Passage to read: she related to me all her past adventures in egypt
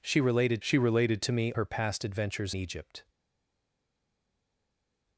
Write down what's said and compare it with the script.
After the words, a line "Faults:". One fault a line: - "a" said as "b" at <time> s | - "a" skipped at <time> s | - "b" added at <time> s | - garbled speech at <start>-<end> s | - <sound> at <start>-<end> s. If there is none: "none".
she related she related to me her past adventures egypt
Faults:
- "she related" added at 0.6 s
- "all" skipped at 1.5 s
- "in" skipped at 2.5 s